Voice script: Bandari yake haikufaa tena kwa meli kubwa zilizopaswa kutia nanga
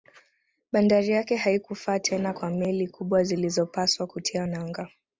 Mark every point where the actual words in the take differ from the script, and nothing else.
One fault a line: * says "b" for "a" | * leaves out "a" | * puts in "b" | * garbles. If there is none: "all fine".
all fine